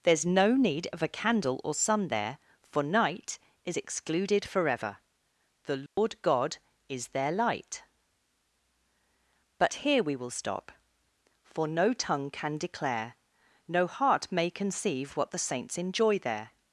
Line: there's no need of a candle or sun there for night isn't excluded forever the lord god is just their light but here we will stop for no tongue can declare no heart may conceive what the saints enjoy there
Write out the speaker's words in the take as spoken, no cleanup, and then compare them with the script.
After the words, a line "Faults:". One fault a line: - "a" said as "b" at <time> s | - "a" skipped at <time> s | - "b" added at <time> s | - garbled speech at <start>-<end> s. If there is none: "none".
there's no need of a candle or sun there for night is excluded forever the lord god is their light but here we will stop for no tongue can declare no heart may conceive what the saints enjoy there
Faults:
- "isn't" said as "is" at 3.6 s
- "just" skipped at 7.1 s